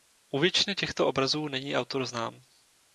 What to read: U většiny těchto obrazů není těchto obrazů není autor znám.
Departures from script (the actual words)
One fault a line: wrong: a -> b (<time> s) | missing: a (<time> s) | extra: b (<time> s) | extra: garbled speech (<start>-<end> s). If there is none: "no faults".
missing: těchto obrazů není (1.8 s)